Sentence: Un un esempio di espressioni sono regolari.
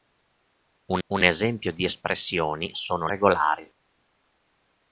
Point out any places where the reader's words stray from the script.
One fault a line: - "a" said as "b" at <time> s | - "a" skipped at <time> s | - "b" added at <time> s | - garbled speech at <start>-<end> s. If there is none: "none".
none